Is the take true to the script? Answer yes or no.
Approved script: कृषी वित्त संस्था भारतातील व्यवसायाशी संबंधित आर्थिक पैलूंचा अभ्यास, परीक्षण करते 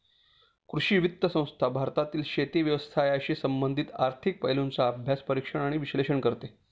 no